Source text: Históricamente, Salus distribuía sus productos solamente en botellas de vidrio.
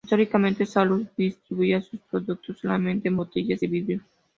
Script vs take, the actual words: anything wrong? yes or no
no